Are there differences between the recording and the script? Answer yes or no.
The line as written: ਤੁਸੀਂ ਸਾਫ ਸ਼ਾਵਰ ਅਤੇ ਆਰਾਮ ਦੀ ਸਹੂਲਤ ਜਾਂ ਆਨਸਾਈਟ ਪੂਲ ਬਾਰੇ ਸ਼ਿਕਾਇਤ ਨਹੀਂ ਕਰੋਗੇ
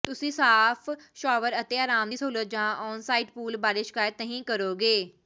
no